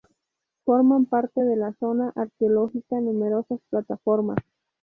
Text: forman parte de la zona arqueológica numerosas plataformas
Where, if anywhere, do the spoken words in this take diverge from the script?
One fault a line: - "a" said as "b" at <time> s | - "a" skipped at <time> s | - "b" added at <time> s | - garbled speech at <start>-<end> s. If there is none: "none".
none